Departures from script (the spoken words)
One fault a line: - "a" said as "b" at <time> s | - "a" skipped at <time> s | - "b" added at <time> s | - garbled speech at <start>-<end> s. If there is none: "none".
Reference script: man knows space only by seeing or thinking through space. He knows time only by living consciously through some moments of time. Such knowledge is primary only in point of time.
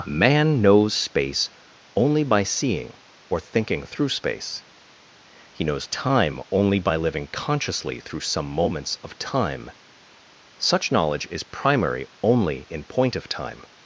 none